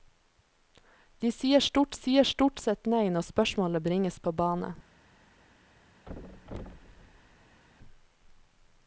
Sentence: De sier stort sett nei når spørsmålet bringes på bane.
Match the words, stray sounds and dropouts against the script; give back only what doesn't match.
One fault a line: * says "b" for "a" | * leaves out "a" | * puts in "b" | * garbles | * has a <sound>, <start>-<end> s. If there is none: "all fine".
* puts in "sier stort"
* has a thud, 6.1-7.6 s